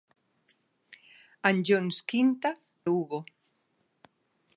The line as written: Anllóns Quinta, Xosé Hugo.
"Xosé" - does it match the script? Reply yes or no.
no